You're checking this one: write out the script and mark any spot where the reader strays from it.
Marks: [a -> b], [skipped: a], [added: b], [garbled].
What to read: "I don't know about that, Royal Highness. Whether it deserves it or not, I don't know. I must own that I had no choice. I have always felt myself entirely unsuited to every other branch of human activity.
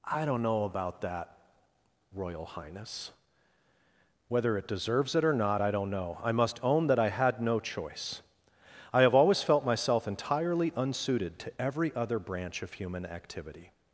"I don't know about that, Royal Highness. Whether it deserves it or not, I don't know. I must own that I had no choice. I have always felt myself entirely unsuited to every other branch of human activity.